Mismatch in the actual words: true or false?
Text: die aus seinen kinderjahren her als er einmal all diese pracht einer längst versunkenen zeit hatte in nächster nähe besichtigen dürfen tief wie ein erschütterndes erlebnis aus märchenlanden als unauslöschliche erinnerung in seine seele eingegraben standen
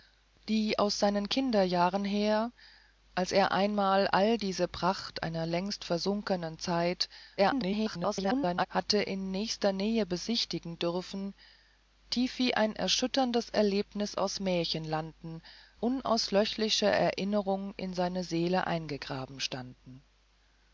true